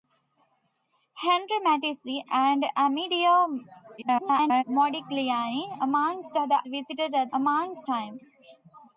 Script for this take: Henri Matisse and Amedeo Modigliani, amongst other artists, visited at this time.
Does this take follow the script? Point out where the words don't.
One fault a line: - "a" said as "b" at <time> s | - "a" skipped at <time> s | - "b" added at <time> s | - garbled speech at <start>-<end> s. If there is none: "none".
- garbled speech at 4.0-4.6 s
- "artists" skipped at 6.6 s
- "this" said as "amongst" at 7.3 s